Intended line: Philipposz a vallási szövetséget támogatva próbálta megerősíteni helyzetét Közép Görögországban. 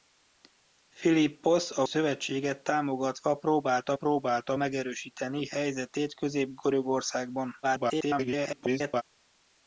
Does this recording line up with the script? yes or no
no